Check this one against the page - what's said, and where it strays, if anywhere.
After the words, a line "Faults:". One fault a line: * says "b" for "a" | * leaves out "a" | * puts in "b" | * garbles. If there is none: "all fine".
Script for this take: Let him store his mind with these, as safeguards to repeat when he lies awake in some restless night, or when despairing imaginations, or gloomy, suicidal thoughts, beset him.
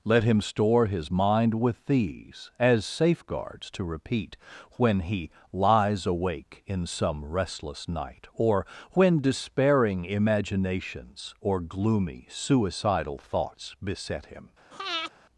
Let him store his mind with these, as safeguards to repeat when he lies awake in some restless night, or when despairing imaginations, or gloomy, suicidal thoughts, beset him.
Faults:
all fine